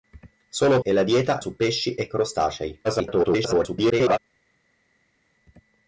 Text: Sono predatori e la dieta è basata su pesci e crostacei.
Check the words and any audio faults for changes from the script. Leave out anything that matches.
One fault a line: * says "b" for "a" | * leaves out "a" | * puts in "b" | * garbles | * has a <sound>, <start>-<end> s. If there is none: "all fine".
* leaves out "predatori"
* leaves out "è basata"
* garbles